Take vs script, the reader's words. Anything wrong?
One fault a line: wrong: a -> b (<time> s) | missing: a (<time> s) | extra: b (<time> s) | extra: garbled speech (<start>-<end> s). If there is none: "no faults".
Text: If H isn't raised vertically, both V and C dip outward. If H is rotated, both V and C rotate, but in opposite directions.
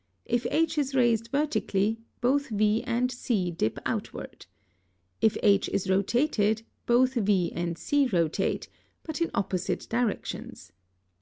wrong: isn't -> is (0.8 s)